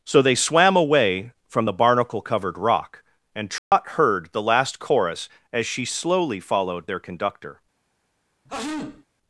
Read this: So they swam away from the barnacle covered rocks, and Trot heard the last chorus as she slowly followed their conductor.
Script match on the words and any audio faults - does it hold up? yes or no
no